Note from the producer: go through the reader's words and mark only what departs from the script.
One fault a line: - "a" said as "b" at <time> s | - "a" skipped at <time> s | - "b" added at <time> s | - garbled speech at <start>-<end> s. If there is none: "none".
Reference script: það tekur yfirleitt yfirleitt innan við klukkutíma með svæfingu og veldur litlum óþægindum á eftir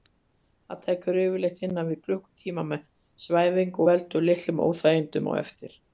- "yfirleitt" skipped at 1.6 s